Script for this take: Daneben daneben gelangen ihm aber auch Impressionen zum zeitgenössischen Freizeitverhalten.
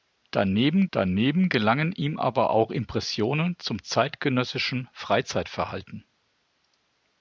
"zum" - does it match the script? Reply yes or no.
yes